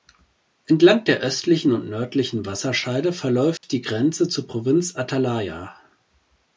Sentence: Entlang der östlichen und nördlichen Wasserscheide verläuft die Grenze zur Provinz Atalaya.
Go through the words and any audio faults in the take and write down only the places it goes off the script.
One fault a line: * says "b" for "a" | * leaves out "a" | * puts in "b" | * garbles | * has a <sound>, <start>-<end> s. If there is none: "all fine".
* has a dropout, 3.6-3.6 s